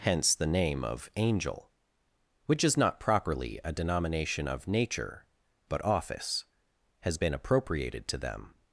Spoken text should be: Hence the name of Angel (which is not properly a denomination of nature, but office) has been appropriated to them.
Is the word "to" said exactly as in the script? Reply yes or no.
yes